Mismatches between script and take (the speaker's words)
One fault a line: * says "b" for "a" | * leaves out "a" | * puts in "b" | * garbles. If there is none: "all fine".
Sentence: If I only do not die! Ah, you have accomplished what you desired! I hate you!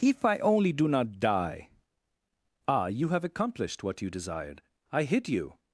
* says "hit" for "hate"